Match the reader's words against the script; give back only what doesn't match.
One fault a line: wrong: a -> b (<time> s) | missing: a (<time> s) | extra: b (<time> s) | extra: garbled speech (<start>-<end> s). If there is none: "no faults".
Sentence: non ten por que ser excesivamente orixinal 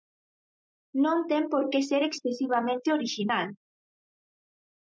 no faults